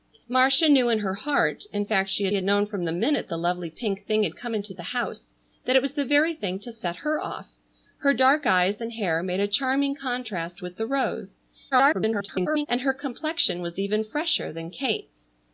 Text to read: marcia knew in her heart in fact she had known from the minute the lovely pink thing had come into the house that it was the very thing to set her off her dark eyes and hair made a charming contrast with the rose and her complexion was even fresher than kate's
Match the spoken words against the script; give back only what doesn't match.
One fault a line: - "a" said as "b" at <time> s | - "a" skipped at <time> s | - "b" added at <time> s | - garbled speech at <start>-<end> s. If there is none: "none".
- "had" added at 2.3 s
- garbled speech at 11.7-12.7 s